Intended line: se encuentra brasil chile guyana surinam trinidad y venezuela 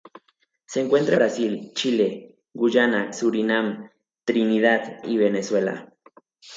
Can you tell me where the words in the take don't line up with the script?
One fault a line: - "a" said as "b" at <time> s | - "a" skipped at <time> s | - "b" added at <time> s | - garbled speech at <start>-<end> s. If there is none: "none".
none